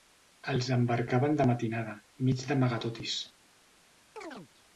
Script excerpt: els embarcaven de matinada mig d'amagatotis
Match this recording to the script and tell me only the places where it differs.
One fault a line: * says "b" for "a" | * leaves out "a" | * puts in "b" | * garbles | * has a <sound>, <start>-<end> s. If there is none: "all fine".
* has a chirp, 4.2-4.5 s